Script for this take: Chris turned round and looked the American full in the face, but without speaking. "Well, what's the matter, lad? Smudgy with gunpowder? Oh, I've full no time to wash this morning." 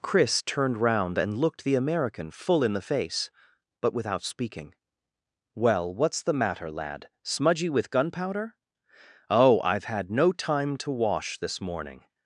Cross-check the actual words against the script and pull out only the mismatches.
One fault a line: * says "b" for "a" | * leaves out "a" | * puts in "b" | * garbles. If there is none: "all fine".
* says "had" for "full"